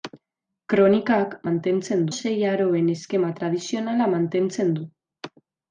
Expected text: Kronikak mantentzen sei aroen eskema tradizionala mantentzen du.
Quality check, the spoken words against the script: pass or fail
pass